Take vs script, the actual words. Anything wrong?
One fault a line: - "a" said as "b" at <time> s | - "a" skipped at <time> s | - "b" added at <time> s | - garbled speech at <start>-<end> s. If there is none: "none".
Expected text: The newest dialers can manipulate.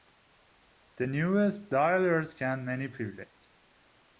none